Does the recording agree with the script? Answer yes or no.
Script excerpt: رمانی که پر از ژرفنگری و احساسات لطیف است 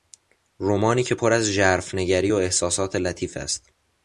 yes